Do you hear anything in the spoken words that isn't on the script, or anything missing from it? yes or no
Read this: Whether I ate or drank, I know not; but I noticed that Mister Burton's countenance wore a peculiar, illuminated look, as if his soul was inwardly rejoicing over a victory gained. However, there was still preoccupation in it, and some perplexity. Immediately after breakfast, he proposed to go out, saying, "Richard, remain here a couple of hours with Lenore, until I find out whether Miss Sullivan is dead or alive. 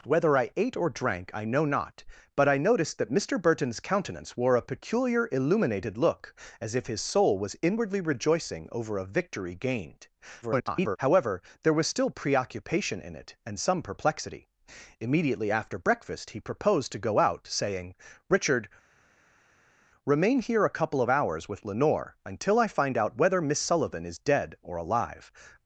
yes